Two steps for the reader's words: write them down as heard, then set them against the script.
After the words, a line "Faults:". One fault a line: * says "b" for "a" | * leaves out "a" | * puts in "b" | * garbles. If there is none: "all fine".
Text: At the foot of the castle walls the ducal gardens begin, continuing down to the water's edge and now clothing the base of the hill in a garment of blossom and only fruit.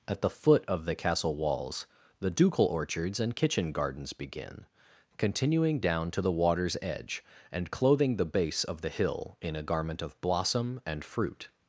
At the foot of the castle walls the ducal orchards and kitchen gardens begin, continuing down to the water's edge and clothing the base of the hill in a garment of blossom and fruit.
Faults:
* puts in "orchards and kitchen"
* leaves out "now"
* leaves out "only"